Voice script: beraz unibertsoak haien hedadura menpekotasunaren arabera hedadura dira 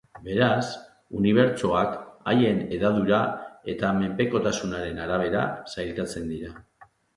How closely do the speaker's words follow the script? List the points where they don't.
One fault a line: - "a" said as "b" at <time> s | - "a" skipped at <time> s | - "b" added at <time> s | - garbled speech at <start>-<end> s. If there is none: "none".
- "eta" added at 3.7 s
- "hedadura" said as "sailkatzen" at 5.7 s